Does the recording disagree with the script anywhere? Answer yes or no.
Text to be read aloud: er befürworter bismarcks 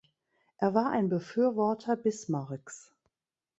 yes